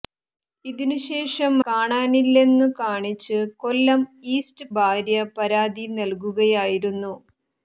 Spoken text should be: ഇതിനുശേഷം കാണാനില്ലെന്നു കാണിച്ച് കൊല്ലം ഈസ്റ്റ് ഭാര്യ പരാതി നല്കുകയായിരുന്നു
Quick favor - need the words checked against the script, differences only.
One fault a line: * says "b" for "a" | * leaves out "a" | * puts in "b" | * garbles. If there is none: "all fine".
all fine